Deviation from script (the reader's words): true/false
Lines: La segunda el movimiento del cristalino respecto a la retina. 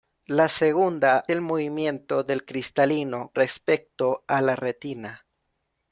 false